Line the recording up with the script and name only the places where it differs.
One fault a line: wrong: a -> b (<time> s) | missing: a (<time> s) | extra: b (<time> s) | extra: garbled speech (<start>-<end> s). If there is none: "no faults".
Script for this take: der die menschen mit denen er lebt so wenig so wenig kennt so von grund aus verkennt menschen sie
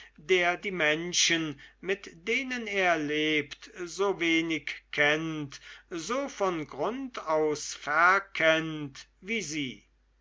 missing: so wenig (4.8 s)
wrong: menschen -> wie (9.2 s)